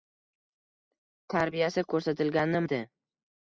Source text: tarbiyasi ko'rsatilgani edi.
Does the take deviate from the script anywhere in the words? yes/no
no